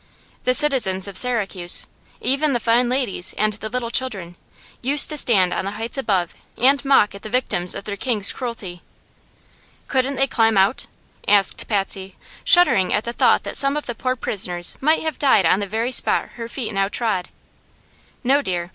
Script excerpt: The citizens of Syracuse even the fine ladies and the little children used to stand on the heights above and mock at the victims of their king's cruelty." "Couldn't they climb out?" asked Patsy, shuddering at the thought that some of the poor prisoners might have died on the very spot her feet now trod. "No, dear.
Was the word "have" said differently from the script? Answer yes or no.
no